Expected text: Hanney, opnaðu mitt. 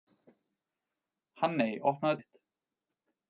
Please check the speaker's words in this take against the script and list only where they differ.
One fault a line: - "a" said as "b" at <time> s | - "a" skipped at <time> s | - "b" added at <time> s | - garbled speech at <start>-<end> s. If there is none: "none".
none